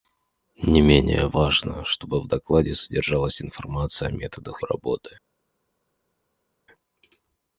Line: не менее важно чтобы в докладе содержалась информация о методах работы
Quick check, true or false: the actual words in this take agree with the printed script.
true